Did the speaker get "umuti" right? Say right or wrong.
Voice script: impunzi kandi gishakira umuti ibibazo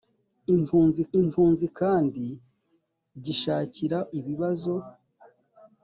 wrong